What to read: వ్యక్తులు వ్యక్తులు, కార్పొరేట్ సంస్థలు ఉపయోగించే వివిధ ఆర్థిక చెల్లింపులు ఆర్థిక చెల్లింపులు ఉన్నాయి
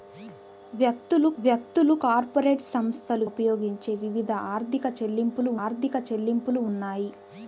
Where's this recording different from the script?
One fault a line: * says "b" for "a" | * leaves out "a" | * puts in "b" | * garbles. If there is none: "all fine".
all fine